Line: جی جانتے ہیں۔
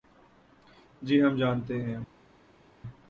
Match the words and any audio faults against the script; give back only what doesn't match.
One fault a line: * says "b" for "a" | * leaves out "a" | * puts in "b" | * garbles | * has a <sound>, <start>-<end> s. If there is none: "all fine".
* puts in "ہم"